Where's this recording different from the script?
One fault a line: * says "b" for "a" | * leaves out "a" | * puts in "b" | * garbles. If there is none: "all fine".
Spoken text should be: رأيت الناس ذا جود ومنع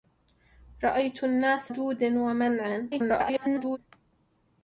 * leaves out "ذا"
* garbles